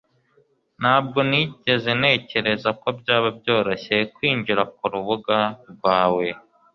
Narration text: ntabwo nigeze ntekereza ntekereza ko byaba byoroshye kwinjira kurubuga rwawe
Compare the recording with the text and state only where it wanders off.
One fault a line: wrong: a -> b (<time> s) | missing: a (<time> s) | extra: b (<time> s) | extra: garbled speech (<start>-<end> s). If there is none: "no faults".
missing: ntekereza (2.7 s)